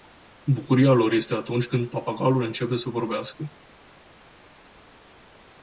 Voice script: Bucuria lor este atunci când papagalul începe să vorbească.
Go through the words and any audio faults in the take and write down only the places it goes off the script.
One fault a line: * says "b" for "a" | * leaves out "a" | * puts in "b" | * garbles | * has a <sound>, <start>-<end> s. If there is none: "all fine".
all fine